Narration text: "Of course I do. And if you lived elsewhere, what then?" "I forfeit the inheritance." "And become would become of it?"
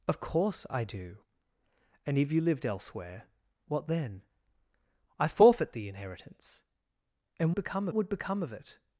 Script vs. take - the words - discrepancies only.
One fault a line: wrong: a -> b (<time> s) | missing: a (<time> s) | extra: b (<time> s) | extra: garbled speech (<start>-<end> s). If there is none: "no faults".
no faults